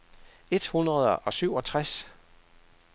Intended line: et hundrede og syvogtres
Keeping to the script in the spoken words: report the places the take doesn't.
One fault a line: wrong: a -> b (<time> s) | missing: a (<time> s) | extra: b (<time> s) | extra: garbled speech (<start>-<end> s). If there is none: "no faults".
no faults